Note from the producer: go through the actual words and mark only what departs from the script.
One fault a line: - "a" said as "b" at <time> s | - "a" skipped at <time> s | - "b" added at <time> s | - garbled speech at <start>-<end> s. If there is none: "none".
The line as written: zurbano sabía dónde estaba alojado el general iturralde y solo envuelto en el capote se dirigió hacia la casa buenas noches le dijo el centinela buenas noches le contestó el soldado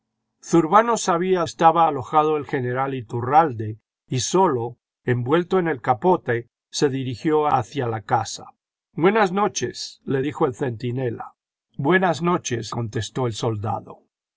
- "dónde" skipped at 1.4 s
- "le" skipped at 12.7 s